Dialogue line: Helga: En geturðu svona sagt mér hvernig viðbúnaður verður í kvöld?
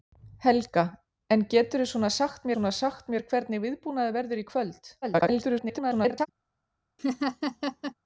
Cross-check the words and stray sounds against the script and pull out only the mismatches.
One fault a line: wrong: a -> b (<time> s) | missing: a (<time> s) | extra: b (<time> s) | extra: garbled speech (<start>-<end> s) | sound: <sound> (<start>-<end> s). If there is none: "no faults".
extra: svona sagt (2.5 s)
extra: garbled speech (5.0-6.3 s)
sound: laugh (7.0-7.9 s)